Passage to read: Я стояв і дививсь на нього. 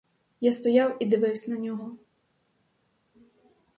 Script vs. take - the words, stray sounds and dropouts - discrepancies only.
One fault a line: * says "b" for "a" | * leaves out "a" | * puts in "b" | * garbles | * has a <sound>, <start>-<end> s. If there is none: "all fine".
all fine